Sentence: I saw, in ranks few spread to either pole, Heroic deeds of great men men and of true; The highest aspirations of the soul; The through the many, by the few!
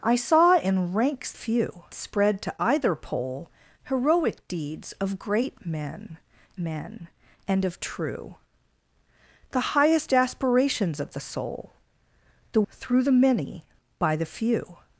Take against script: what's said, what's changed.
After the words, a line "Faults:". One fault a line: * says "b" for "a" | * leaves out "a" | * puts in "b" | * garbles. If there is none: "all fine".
I saw, in ranks few spread to either pole, Heroic deeds of great men men and of true; The highest aspirations of the soul; The through the many, by the few!
Faults:
all fine